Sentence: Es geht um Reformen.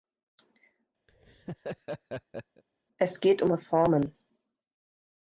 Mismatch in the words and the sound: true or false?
true